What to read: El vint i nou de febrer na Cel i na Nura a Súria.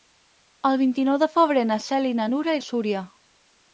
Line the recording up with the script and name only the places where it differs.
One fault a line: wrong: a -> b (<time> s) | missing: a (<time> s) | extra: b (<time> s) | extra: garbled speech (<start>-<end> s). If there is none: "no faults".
no faults